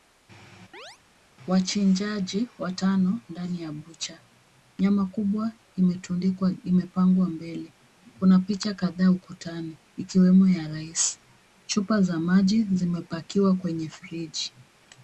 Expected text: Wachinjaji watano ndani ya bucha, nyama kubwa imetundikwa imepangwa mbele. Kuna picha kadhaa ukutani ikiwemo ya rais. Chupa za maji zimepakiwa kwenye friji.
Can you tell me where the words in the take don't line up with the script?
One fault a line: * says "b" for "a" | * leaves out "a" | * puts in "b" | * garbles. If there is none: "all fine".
all fine